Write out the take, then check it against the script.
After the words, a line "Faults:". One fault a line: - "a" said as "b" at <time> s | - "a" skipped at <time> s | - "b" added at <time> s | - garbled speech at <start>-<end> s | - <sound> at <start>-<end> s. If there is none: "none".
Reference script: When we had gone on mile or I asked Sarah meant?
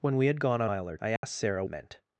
When we had gone on mile or I asked Sarah meant?
Faults:
- dropout at 1.2-1.2 s